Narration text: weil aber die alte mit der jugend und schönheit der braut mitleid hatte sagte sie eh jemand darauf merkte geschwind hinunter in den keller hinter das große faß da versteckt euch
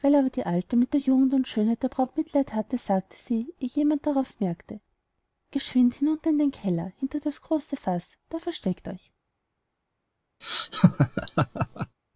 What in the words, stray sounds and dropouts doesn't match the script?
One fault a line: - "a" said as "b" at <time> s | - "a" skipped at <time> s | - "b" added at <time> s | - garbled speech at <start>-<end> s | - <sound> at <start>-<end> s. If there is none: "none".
- laugh at 10.4-12.0 s